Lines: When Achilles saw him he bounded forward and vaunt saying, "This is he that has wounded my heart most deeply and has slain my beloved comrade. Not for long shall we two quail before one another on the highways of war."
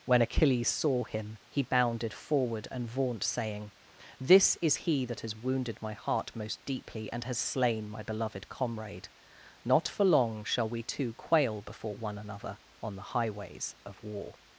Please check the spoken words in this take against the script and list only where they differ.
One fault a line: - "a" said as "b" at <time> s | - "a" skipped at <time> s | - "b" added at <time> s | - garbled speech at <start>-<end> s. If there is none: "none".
none